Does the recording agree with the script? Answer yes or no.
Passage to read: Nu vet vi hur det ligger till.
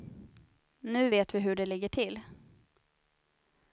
yes